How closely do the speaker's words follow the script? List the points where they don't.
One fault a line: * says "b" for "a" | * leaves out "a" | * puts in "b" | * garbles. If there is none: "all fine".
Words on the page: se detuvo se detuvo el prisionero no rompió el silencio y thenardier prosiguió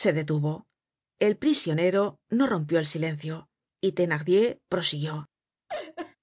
* leaves out "se detuvo"